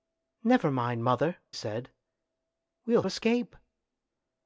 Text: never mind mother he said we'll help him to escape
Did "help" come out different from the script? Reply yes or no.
yes